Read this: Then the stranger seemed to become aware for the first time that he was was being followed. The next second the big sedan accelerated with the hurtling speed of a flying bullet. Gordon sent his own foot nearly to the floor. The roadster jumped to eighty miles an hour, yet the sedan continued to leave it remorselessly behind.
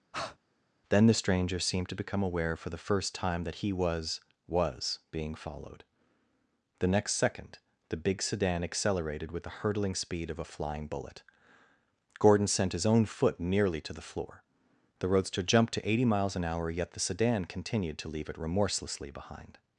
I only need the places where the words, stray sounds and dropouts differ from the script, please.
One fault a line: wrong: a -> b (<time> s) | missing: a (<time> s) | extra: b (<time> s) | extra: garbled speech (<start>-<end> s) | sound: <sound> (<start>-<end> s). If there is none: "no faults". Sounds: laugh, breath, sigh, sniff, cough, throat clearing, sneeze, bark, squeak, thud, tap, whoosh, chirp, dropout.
sound: breath (0.1-0.4 s)